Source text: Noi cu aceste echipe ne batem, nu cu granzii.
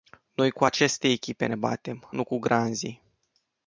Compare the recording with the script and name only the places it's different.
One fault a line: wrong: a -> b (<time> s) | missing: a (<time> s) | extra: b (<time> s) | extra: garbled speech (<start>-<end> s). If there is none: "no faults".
no faults